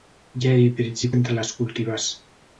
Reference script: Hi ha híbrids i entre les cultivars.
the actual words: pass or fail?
pass